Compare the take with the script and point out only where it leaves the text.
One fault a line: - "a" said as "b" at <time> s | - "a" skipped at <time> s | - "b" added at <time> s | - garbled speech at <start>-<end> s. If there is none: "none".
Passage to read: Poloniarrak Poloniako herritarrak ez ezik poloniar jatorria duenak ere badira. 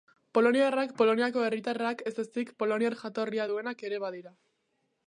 none